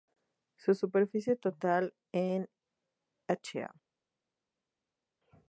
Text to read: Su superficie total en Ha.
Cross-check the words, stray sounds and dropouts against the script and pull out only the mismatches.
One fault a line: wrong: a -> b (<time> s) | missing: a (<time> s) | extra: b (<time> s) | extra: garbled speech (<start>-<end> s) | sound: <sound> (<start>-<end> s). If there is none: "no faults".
no faults